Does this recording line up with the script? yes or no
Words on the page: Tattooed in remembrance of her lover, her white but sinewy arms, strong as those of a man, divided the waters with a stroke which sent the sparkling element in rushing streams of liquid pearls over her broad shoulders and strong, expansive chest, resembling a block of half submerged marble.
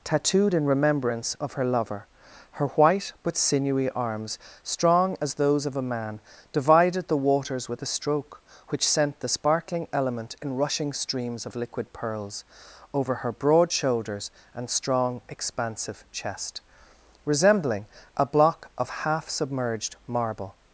yes